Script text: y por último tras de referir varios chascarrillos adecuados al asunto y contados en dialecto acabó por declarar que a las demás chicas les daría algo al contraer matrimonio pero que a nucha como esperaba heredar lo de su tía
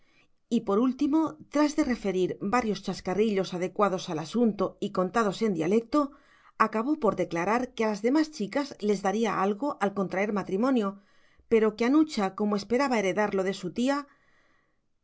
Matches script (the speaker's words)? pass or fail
pass